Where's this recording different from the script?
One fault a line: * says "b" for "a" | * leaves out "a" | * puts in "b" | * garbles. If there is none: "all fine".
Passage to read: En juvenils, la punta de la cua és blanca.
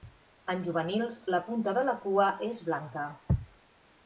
all fine